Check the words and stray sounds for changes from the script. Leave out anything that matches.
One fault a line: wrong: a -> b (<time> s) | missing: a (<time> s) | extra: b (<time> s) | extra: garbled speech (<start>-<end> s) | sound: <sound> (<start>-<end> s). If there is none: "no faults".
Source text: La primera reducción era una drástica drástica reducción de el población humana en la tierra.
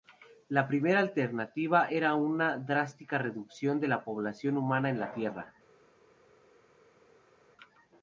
wrong: reducción -> alternativa (1.0 s)
missing: drástica (3.2 s)
wrong: el -> la (3.9 s)